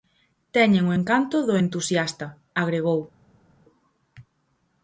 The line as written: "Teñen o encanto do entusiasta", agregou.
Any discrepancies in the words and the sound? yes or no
no